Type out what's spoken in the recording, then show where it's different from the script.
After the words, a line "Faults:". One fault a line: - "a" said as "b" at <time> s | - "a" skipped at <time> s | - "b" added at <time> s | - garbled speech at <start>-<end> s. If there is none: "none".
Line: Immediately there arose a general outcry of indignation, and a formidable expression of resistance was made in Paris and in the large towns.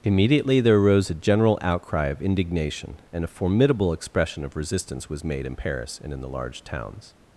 Immediately there arose a general outcry of indignation, and a formidable expression of resistance was made in Paris and in the large towns.
Faults:
none